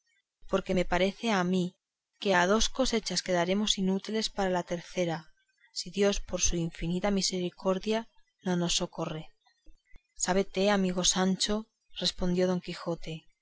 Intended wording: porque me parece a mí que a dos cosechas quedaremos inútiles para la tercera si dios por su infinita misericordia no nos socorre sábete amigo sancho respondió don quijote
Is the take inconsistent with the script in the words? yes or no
no